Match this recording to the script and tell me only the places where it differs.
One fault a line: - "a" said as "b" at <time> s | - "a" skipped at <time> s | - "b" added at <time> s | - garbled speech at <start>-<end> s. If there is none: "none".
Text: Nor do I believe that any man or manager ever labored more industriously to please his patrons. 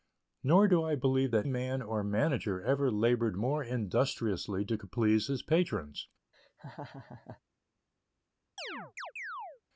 - "any" skipped at 1.5 s